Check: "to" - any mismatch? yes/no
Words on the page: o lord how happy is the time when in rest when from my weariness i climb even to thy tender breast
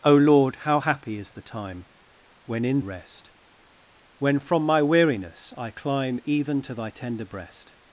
no